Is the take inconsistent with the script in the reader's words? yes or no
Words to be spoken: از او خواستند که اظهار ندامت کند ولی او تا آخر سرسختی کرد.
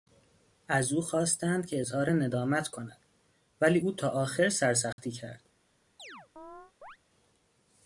no